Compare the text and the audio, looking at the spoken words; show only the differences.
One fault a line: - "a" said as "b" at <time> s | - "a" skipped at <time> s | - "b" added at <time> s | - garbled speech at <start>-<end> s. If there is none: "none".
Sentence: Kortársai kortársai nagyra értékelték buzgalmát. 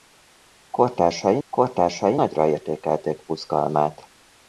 none